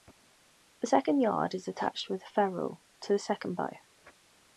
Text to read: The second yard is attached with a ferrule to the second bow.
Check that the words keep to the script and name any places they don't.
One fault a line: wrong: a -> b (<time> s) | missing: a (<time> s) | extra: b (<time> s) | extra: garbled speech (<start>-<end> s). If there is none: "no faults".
no faults